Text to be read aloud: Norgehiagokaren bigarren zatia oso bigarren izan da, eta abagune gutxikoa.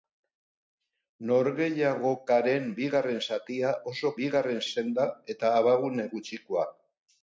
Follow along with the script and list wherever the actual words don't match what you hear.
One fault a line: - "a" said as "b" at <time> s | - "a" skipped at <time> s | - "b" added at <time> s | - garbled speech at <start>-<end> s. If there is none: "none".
none